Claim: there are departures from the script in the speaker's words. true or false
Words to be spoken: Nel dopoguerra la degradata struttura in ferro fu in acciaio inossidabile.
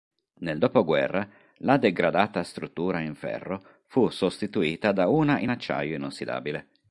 true